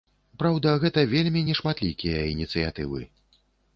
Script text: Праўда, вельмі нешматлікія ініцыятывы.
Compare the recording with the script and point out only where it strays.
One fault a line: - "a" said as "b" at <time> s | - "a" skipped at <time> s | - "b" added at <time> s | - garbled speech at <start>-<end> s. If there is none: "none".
- "гэта" added at 0.8 s